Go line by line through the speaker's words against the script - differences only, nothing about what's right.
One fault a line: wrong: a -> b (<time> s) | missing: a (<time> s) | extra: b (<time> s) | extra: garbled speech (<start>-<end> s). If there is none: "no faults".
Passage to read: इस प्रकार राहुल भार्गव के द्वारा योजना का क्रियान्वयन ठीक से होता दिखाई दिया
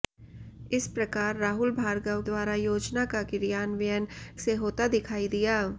missing: के (2.2 s)
missing: ठीक (4.1 s)